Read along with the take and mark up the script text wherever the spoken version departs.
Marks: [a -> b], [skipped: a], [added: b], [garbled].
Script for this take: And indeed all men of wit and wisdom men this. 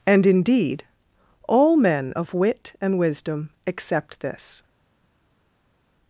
And indeed all men of wit and wisdom [men -> accept] this.